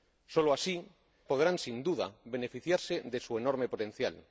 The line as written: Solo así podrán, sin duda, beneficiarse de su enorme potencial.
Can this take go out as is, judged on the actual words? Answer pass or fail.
pass